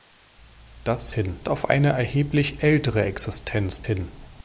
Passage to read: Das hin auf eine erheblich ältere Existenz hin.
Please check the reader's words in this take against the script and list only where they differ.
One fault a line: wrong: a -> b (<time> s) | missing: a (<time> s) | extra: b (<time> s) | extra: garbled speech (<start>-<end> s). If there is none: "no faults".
no faults